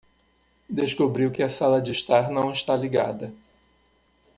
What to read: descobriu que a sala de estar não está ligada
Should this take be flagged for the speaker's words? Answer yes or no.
no